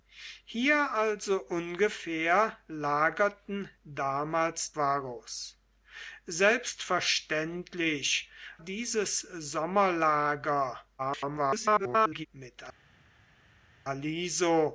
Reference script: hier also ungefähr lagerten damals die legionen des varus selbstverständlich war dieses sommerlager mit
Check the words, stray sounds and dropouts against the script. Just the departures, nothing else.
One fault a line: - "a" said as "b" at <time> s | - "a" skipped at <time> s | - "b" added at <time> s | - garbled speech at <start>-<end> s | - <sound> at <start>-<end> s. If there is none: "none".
- "die legionen des" skipped at 4.8 s
- "war" skipped at 8.3 s
- garbled speech at 11.0-12.3 s